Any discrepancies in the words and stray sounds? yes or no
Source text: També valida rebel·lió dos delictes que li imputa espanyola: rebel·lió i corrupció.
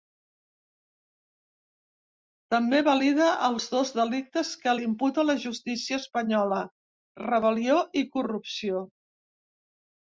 yes